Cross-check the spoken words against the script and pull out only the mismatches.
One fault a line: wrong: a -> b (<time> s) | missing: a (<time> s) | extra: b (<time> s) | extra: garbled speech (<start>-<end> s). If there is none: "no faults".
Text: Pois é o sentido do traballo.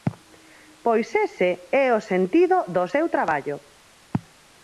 extra: ese (1.2 s)
extra: seu (2.9 s)